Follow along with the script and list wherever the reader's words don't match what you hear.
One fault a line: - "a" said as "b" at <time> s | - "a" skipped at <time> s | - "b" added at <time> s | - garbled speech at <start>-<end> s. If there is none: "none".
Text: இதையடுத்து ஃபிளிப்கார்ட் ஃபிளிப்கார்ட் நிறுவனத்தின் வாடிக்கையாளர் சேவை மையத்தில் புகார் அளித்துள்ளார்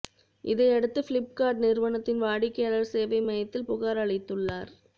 - "ஃபிளிப்கார்ட்" skipped at 1.6 s